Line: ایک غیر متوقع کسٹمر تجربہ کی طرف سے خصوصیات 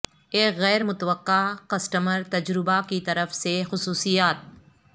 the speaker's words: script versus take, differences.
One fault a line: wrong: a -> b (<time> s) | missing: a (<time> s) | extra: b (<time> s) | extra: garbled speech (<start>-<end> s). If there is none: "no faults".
no faults